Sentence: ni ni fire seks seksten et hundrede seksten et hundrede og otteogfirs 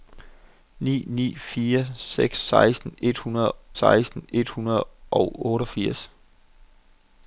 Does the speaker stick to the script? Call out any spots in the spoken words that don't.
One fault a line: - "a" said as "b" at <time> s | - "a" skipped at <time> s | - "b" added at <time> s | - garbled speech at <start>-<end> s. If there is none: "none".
none